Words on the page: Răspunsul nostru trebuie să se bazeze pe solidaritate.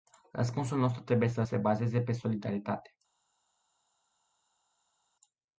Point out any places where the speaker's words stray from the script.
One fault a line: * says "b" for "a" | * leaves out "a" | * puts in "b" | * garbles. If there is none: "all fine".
all fine